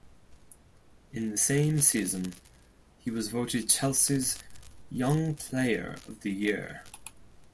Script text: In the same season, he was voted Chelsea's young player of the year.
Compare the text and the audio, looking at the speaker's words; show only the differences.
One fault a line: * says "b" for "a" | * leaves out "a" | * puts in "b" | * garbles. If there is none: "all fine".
all fine